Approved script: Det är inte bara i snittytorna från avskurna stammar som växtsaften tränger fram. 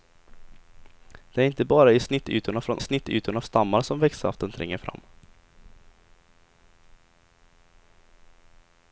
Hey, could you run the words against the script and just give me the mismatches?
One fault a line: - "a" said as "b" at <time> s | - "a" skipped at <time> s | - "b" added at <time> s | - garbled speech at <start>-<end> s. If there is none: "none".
- "avskurna" said as "snittytorna" at 2.8 s